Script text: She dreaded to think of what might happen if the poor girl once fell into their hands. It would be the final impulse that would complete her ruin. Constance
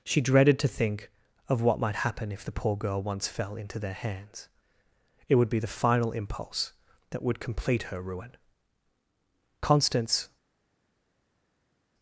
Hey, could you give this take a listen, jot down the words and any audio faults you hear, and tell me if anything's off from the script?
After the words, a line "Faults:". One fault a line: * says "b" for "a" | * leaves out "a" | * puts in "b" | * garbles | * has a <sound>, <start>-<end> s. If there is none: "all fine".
She dreaded to think of what might happen if the poor girl once fell into their hands. It would be the final impulse that would complete her ruin. Constance
Faults:
all fine